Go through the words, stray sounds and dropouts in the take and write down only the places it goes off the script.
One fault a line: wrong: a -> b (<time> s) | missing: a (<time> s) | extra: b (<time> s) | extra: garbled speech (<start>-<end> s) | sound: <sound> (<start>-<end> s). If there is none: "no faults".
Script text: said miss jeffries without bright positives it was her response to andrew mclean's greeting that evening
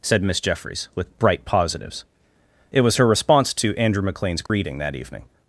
wrong: without -> with (0.9 s)
sound: dropout (4.5-4.5 s)